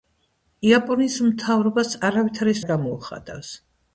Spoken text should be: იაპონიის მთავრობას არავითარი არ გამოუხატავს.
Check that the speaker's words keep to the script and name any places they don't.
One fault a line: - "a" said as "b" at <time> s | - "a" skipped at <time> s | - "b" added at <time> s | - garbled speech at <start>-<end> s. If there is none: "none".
none